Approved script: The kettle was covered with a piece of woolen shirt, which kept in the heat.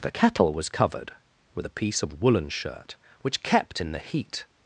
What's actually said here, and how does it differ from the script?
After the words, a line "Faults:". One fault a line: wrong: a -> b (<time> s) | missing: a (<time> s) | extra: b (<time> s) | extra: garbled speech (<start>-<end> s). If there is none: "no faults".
The kettle was covered with a piece of woolen shirt, which kept in the heat.
Faults:
no faults